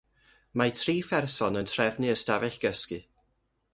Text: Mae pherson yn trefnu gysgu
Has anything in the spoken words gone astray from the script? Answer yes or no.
yes